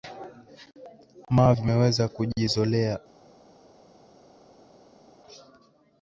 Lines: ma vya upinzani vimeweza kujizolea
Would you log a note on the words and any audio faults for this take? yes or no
yes